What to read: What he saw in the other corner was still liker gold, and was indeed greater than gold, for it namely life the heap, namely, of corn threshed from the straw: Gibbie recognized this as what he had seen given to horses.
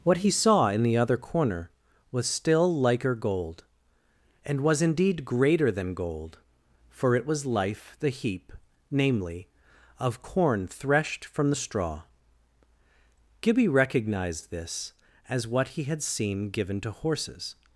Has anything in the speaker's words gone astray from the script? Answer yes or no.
yes